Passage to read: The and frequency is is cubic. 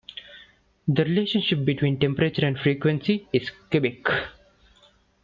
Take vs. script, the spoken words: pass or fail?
fail